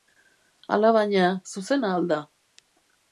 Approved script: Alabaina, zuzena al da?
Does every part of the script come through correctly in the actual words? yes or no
yes